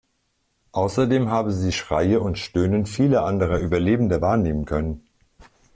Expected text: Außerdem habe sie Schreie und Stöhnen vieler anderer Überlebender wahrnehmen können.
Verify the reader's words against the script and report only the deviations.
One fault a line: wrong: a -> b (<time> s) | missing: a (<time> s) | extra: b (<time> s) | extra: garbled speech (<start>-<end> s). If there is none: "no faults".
no faults